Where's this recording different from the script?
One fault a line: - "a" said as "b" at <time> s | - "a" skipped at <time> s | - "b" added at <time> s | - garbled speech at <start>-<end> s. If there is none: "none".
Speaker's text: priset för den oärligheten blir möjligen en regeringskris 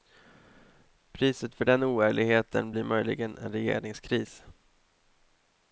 none